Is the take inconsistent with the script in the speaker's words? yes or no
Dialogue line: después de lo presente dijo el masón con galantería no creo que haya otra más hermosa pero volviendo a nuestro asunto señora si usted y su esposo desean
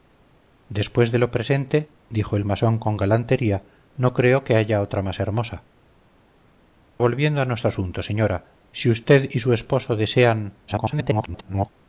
yes